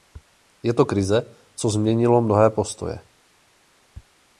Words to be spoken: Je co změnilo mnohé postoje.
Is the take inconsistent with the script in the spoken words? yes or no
yes